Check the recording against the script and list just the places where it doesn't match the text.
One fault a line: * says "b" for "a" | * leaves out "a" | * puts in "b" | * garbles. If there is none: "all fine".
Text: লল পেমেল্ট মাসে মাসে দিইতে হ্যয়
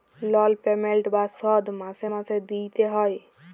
* puts in "বা শধ"